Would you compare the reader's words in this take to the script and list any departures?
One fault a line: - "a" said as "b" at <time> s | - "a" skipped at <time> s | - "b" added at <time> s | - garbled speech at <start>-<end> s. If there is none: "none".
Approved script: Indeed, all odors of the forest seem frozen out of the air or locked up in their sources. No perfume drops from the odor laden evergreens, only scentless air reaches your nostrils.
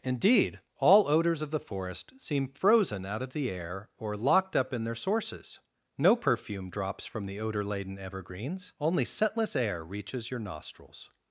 none